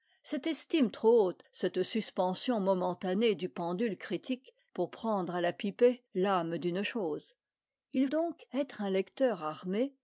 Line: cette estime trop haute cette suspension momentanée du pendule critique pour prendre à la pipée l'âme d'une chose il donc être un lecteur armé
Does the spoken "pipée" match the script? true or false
true